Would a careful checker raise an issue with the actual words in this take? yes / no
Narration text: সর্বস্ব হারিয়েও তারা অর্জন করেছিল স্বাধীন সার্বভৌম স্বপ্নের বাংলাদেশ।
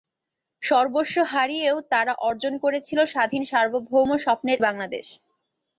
no